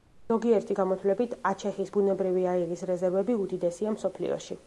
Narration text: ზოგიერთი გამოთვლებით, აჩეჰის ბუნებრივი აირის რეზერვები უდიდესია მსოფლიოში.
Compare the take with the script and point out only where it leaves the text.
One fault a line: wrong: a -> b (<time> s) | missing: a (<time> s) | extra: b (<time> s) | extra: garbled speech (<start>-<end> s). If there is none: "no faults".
no faults